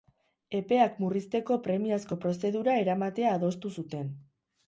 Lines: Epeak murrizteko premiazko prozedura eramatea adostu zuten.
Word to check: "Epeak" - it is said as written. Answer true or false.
true